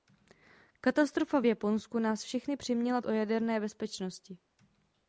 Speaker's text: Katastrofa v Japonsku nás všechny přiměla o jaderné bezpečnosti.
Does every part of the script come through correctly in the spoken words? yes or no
yes